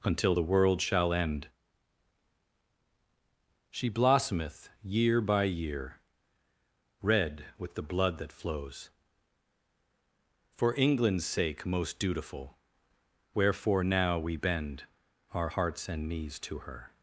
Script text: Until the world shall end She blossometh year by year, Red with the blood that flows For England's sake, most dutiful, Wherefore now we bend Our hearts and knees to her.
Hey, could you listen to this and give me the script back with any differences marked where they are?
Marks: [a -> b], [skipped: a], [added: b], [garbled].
Until the world shall end She blossometh year by year, Red with the blood that flows For England's sake, most dutiful, Wherefore now we bend Our hearts and knees to her.